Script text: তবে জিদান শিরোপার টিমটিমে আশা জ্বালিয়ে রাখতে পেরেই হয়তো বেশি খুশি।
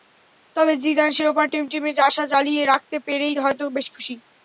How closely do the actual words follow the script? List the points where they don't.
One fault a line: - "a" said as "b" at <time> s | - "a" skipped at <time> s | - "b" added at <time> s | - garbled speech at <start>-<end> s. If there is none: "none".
none